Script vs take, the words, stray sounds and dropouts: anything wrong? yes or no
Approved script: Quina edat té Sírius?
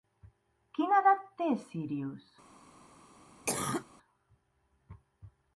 yes